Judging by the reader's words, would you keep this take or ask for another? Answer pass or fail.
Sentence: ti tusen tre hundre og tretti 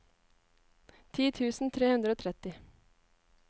pass